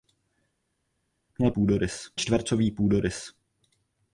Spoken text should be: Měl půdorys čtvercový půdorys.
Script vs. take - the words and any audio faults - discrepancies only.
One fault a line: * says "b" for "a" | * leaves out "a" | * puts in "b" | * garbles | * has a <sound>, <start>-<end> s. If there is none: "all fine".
all fine